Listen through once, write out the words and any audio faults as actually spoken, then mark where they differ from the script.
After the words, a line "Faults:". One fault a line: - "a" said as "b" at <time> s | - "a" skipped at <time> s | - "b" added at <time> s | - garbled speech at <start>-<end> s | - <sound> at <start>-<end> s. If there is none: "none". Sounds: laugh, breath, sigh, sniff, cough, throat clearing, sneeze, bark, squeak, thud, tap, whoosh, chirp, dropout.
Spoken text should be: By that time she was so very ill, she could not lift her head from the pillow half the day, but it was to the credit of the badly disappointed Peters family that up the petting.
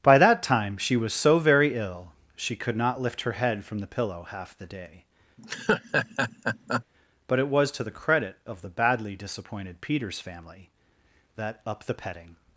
By that time she was so very ill, she could not lift her head from the pillow half the day, but it was to the credit of the badly disappointed Peters family that up the petting.
Faults:
- laugh at 5.4-6.8 s